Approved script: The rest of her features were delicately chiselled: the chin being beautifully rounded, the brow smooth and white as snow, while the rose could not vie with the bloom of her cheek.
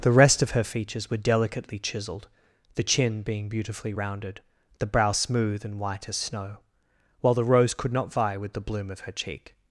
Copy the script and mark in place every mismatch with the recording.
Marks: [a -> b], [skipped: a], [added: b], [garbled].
The rest of her features were delicately chiselled: the chin being beautifully rounded, the brow smooth and white as snow, while the rose could not vie with the bloom of her cheek.